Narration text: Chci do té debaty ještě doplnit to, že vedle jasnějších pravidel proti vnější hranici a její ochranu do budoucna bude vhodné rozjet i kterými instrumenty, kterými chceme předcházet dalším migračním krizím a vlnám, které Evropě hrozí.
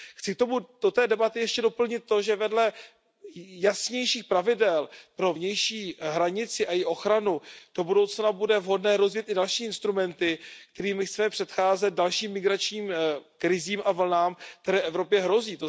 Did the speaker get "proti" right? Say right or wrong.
wrong